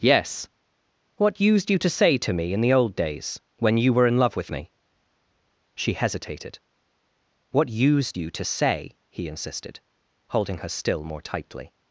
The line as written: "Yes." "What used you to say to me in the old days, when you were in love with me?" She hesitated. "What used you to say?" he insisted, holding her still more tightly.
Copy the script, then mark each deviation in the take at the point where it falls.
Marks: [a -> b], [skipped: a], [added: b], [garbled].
"Yes." "What used you to say to me in the old days, when you were in love with me?" She hesitated. "What used you to say?" he insisted, holding her still more tightly.